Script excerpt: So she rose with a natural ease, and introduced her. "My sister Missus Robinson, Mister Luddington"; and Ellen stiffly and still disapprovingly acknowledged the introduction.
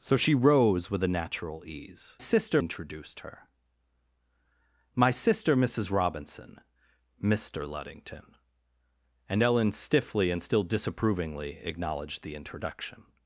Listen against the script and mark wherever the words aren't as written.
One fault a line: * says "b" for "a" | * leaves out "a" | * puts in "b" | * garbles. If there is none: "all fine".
* says "sister" for "and"